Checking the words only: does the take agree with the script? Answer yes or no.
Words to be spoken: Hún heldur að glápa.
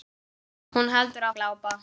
yes